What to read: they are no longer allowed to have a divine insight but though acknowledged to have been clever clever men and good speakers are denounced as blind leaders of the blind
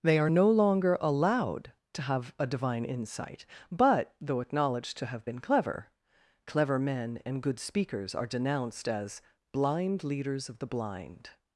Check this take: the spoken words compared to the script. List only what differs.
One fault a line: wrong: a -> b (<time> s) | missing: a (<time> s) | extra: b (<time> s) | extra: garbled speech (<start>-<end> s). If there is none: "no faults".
no faults